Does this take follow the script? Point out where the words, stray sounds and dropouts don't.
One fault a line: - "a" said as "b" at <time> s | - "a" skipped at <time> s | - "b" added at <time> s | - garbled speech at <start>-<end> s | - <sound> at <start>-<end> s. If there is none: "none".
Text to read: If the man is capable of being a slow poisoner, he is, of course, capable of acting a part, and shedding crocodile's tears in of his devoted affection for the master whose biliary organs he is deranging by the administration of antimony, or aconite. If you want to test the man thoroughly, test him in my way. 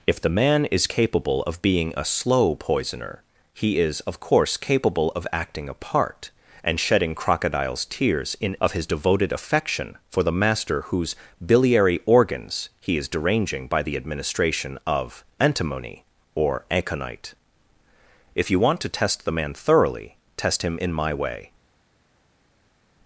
none